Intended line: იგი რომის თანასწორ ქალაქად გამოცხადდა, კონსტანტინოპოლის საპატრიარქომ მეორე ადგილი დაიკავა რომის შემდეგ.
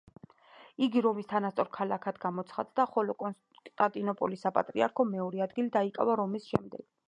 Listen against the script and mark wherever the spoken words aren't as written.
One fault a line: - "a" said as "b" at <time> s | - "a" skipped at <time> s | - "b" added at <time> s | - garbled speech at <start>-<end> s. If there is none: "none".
- "ხოლო" added at 3.0 s